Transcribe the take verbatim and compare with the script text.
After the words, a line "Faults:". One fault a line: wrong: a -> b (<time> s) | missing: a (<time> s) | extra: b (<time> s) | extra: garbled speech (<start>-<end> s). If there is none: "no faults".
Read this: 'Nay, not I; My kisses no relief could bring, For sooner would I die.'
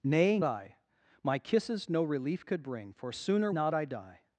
'Nay, I; My kisses no relief could bring, For sooner not I die.'
Faults:
missing: not (0.4 s)
wrong: would -> not (3.5 s)